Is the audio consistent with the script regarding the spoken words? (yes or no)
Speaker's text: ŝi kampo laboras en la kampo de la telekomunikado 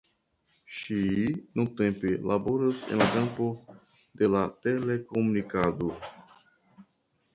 no